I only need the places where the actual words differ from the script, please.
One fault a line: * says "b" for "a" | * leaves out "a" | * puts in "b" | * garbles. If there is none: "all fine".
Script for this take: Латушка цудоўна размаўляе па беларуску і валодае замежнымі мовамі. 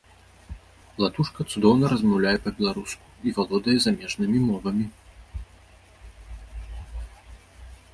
all fine